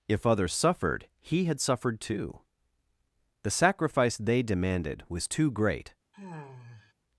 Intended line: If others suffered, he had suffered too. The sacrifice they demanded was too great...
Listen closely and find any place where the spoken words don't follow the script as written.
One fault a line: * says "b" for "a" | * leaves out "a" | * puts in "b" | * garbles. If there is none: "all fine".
all fine